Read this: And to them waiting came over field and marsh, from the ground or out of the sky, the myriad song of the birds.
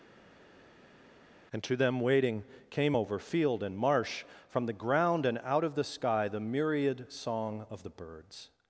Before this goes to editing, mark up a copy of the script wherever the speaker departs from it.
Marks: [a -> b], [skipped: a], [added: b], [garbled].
And to them waiting came over field and marsh, from the ground [or -> and] out of the sky, the myriad song of the birds.